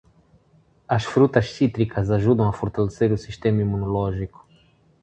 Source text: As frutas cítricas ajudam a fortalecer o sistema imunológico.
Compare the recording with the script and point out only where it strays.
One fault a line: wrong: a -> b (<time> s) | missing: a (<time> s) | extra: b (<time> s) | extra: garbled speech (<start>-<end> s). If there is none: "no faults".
no faults